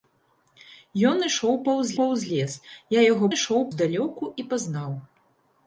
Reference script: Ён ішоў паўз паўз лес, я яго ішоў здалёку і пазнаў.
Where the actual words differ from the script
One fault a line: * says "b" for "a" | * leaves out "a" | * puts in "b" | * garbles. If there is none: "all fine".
all fine